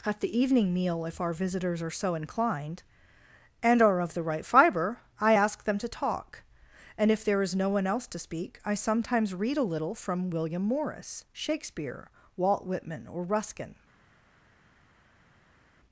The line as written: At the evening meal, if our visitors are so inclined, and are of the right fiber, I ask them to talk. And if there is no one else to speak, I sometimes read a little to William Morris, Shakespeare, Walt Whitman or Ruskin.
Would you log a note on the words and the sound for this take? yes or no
yes